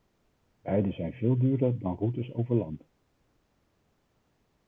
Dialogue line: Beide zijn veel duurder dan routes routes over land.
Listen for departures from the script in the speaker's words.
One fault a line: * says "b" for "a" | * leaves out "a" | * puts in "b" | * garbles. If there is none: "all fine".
* leaves out "routes"